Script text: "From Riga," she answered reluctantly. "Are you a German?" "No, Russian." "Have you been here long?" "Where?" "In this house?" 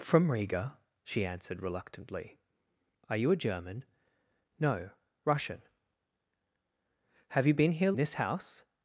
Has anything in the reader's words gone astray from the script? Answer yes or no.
yes